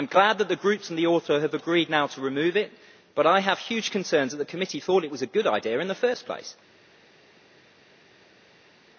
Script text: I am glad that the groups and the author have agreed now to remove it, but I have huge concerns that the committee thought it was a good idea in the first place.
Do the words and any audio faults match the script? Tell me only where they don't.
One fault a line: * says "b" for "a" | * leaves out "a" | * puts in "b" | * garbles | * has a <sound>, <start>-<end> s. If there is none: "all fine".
all fine